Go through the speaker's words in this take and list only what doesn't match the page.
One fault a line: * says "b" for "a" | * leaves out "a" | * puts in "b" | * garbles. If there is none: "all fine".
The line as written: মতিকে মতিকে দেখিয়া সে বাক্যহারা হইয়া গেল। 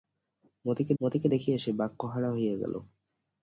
all fine